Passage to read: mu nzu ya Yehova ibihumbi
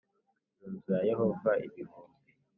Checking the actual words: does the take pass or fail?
pass